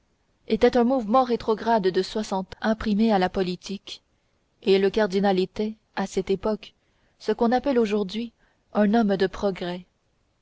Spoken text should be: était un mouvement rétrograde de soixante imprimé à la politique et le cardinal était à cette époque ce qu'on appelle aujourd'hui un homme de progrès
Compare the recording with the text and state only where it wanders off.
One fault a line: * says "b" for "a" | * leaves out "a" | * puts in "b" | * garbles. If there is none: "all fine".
all fine